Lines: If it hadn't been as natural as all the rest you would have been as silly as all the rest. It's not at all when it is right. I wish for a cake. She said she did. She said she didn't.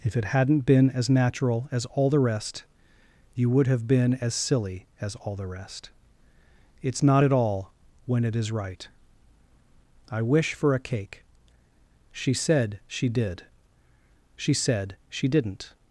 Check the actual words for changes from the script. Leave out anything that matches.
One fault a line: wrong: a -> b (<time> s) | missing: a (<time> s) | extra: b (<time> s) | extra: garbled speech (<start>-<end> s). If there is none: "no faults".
no faults